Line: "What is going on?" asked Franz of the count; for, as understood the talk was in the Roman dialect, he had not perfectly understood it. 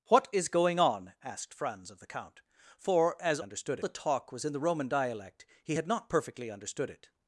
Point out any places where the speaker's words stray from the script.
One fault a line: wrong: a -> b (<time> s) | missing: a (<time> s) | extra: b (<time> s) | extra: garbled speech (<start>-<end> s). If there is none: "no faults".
no faults